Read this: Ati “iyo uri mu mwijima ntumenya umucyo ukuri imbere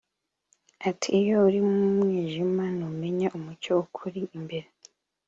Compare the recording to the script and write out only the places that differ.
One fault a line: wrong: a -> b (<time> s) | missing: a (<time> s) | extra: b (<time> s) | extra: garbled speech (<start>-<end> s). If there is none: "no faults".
no faults